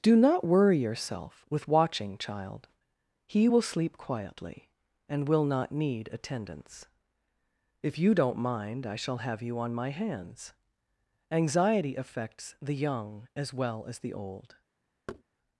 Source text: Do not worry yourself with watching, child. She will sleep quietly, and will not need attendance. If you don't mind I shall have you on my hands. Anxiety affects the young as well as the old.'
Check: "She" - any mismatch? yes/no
yes